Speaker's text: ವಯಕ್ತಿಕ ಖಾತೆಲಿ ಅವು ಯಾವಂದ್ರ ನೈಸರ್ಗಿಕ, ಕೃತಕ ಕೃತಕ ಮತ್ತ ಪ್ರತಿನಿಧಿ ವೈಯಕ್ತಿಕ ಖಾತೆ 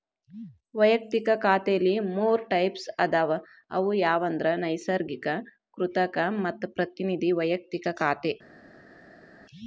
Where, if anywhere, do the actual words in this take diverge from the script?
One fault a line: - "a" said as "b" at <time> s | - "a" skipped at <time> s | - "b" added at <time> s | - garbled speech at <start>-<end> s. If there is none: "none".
- "ಮೂರ್ ಟೈಪ್ಸ್ ಅದಾವ" added at 2.1 s
- "ಕೃತಕ" skipped at 6.2 s